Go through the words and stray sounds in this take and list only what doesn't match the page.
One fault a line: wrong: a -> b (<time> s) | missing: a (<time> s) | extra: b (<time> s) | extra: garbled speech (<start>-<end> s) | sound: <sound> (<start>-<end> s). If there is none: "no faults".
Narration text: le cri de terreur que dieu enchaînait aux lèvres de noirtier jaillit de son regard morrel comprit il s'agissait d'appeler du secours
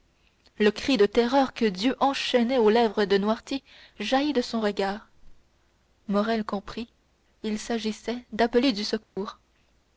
sound: dropout (9.0-9.2 s)